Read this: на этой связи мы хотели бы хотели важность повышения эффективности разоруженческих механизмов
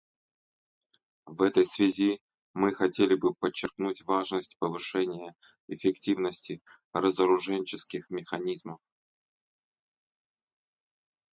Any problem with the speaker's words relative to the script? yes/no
yes